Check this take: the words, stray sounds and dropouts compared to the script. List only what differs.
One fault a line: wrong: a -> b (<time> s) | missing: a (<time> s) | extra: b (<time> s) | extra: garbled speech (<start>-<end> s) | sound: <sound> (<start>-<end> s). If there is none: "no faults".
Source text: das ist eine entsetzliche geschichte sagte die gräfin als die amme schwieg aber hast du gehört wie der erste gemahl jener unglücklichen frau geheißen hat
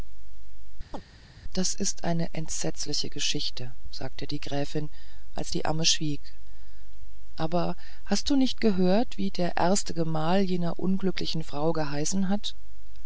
sound: chirp (0.9-1.0 s)
extra: nicht (8.3 s)